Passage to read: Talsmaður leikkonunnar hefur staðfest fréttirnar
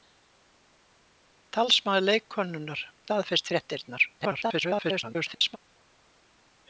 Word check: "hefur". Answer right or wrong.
wrong